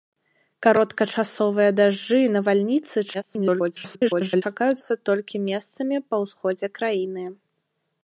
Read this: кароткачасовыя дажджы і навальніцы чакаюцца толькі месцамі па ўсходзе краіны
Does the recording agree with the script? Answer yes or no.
no